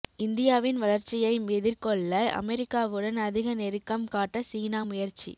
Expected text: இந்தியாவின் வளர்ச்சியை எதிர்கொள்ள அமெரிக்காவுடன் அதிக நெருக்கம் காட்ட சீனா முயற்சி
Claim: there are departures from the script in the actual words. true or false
false